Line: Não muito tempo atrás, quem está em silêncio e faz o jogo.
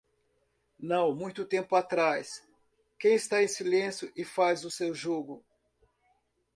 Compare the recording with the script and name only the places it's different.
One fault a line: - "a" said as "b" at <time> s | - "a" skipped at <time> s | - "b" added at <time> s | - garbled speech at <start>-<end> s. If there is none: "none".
- "seu" added at 4.7 s